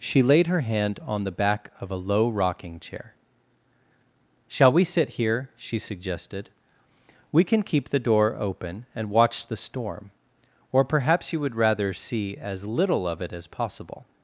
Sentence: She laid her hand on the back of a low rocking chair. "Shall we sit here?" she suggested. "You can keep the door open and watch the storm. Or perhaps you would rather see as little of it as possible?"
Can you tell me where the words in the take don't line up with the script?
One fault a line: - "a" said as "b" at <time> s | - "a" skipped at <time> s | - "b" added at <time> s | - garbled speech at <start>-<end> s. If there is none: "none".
- "You" said as "We" at 7.3 s